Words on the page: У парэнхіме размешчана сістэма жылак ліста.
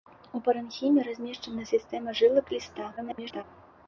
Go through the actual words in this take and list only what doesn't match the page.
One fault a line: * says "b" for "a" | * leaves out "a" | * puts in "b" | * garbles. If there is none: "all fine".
* garbles